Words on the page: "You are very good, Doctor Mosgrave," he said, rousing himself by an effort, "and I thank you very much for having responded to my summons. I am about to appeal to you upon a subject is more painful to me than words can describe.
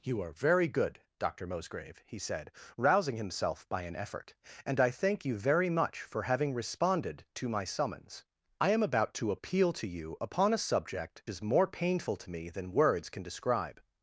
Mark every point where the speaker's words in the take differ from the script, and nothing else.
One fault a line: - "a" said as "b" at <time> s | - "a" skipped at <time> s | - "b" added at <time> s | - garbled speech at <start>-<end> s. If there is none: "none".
none